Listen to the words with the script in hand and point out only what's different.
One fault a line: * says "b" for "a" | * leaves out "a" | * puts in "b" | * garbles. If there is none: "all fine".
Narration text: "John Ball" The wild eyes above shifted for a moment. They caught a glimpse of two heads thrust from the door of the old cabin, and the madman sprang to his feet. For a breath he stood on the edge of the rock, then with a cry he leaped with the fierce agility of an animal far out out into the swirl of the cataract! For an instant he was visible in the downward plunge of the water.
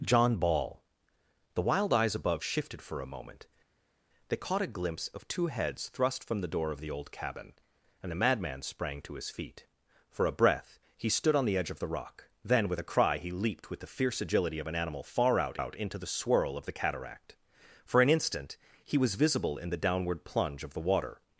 all fine